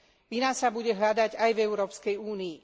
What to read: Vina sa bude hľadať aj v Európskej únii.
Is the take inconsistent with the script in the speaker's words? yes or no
no